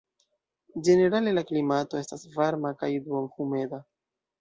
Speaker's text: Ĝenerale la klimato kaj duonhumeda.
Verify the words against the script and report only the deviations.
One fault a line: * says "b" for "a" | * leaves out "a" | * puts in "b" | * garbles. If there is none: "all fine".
* puts in "estas varma"